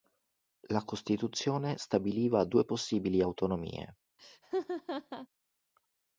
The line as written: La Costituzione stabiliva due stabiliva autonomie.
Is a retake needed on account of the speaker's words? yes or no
yes